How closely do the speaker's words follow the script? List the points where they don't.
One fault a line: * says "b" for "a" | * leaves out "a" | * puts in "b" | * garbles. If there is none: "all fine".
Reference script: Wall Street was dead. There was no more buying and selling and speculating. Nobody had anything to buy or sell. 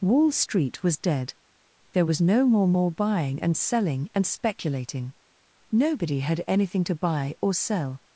* puts in "more"